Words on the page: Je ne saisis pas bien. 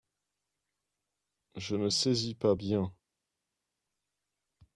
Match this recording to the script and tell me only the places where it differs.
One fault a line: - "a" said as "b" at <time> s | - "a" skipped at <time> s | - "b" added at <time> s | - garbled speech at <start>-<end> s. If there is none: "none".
none